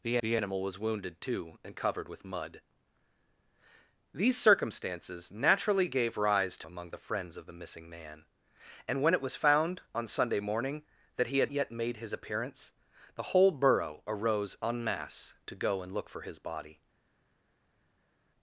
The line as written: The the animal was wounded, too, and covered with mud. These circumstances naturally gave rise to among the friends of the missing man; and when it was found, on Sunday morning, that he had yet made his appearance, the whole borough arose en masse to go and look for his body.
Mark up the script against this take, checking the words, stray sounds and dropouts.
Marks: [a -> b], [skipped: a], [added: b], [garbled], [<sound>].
The the animal was wounded, too, and covered with mud. These circumstances naturally gave rise to among the friends of the missing man; and when it was found, on Sunday morning, that he had yet made his appearance, the whole borough arose en masse to go and look for his body.